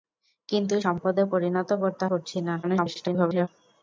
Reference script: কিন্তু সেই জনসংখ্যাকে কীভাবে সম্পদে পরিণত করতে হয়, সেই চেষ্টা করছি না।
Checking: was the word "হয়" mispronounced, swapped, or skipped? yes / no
yes